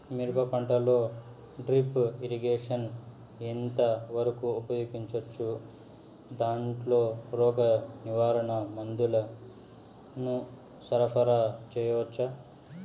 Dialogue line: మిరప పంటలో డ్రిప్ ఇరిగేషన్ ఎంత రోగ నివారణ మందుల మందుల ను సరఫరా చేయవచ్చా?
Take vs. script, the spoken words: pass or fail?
fail